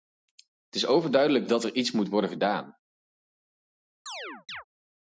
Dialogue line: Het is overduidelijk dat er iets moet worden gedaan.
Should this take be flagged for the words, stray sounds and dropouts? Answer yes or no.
yes